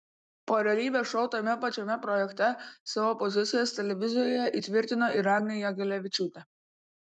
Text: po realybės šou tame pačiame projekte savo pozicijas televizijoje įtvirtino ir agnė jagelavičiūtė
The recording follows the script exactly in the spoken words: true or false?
true